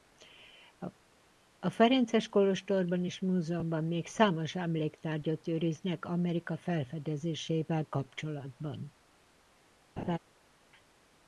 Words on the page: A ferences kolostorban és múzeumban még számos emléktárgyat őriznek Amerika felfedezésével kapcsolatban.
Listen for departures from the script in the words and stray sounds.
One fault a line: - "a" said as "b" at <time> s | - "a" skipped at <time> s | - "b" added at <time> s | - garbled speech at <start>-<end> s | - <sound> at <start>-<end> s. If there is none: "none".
- laugh at 10.0-10.2 s